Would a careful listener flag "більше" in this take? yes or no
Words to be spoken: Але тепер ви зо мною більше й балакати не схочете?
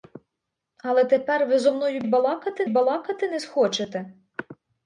yes